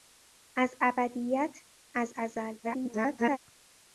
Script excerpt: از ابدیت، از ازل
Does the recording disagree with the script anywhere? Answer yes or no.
yes